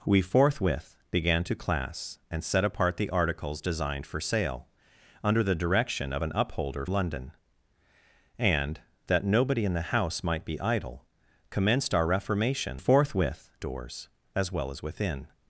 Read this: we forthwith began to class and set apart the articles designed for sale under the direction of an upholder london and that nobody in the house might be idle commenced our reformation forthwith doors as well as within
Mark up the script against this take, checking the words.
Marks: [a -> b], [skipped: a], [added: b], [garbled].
we forthwith began to class and set apart the articles designed for sale under the direction of an upholder london and that nobody in the house might be idle commenced our reformation forthwith doors as well as within